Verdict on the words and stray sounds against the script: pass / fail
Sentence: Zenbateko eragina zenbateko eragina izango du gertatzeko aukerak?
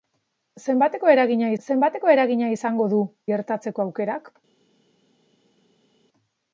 pass